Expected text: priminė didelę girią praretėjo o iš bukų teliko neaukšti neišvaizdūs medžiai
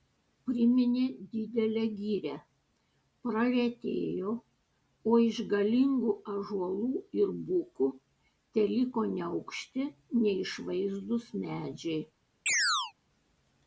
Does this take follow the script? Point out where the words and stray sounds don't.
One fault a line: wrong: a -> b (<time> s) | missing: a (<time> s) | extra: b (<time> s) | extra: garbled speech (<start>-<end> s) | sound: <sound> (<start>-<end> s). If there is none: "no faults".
extra: galingų ąžuolų ir (5.5 s)
sound: chirp (12.5-12.9 s)